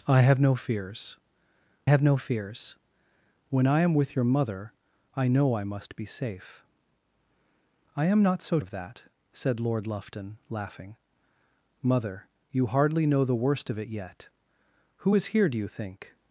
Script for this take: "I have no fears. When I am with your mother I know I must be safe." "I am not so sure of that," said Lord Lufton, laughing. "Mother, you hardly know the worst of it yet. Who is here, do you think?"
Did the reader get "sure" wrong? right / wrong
wrong